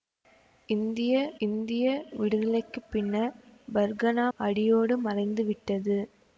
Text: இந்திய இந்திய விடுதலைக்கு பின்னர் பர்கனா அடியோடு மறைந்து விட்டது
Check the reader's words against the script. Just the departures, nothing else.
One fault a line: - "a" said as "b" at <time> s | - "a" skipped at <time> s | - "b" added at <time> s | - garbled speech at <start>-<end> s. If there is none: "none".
none